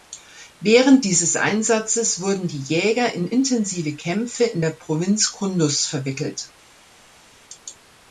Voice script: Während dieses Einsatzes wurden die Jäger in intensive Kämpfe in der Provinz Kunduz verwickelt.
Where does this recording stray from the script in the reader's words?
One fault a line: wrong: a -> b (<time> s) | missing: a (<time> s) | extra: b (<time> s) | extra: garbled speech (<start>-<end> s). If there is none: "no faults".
no faults